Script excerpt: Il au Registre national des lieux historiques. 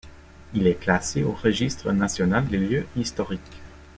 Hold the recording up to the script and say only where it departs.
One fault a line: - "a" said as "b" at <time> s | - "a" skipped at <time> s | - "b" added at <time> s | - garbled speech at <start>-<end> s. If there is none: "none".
- "est classé" added at 0.7 s